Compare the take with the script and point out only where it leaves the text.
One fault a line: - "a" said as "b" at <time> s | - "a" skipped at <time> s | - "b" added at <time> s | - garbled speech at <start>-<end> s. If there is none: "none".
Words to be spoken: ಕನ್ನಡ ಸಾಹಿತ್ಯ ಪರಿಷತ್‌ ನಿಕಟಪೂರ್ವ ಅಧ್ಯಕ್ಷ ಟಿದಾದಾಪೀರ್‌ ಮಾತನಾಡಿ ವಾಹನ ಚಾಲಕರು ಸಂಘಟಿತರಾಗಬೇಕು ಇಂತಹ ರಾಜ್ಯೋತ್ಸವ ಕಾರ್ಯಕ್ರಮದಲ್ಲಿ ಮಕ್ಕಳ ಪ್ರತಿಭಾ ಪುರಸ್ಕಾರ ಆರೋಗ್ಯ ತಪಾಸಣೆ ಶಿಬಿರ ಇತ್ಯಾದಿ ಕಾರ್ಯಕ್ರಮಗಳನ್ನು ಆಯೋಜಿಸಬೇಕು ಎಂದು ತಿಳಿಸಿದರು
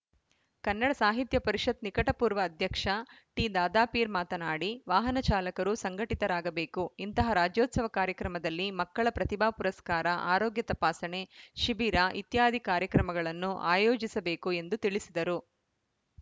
none